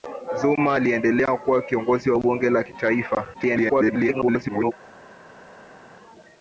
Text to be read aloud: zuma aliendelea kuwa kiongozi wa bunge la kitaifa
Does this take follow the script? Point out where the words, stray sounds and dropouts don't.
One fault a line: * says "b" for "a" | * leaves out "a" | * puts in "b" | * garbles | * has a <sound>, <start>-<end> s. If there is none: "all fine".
* garbles